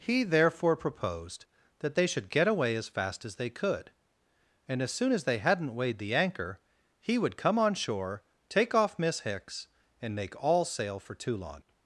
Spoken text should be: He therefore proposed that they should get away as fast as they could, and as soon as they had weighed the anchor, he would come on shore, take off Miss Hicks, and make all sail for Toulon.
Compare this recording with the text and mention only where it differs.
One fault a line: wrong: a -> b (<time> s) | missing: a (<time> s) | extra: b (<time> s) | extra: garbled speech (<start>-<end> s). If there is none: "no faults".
wrong: had -> hadn't (5.4 s)